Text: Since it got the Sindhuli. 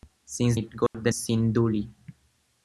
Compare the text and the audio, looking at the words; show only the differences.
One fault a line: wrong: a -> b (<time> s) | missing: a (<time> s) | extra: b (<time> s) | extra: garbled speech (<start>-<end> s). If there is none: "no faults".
no faults